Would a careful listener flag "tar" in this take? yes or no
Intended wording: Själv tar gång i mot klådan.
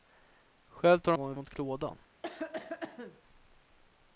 no